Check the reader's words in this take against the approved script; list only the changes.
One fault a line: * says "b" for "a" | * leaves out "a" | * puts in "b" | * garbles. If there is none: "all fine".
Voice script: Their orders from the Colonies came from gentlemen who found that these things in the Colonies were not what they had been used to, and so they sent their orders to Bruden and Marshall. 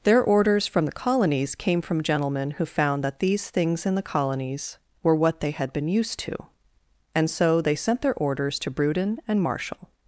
* leaves out "not"